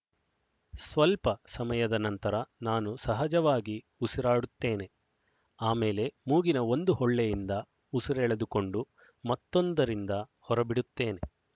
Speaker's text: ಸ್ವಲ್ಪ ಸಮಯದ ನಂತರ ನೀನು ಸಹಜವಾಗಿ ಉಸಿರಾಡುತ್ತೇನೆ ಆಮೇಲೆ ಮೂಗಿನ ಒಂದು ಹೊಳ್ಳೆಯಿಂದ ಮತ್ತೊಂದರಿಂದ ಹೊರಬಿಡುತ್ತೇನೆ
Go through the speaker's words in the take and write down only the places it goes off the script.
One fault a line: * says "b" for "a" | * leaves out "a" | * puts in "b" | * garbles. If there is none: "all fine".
* says "ನಾನು" for "ನೀನು"
* puts in "ಉಸಿರೆಳೆದುಕೊಂಡು"